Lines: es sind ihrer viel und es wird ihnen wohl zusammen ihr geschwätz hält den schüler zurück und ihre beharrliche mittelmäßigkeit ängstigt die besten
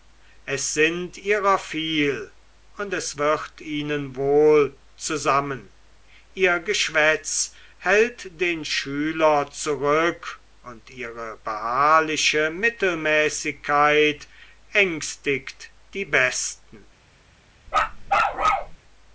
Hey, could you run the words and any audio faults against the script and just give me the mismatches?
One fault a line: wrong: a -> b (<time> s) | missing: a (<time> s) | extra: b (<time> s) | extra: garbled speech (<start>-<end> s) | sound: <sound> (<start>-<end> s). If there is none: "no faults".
sound: bark (17.7-18.8 s)